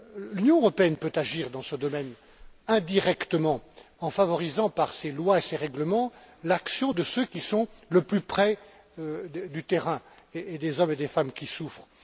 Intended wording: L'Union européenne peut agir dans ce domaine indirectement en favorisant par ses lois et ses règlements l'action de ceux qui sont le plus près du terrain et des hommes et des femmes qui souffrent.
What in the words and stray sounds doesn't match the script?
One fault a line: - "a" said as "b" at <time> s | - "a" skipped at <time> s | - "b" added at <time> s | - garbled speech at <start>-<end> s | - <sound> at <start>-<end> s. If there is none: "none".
none